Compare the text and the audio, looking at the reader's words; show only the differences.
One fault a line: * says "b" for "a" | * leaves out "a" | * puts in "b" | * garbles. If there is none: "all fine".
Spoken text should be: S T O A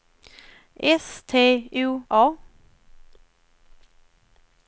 all fine